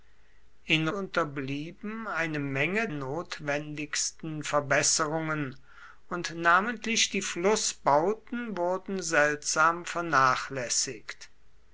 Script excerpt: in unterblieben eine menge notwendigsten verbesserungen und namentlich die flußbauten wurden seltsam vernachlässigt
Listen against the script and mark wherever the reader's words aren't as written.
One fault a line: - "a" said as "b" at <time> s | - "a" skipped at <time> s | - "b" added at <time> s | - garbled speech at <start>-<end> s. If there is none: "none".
none